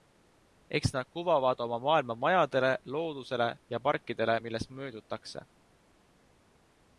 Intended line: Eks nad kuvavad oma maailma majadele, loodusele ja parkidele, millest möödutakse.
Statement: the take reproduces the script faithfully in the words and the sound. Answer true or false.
true